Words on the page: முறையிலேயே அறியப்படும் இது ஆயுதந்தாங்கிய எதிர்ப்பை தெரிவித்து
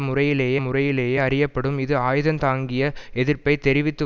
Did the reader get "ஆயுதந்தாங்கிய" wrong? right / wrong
right